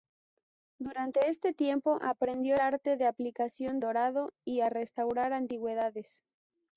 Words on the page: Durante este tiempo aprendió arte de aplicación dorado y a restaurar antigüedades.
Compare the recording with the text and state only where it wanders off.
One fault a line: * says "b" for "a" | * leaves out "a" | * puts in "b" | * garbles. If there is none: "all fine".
all fine